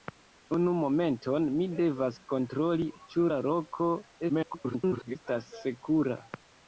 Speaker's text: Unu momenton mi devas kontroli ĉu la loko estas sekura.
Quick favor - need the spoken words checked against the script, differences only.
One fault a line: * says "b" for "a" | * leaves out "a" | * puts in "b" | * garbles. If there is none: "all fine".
* garbles